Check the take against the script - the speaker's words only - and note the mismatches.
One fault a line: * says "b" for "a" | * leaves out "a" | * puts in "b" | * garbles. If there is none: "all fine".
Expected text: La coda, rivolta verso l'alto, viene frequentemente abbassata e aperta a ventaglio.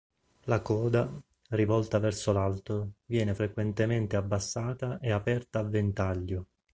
all fine